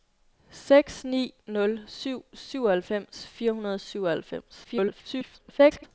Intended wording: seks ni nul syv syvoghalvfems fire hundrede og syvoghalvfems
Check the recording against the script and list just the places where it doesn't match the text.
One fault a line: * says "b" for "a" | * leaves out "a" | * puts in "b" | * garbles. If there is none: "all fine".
* garbles